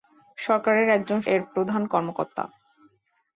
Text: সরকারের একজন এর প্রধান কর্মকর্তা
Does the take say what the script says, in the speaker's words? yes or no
yes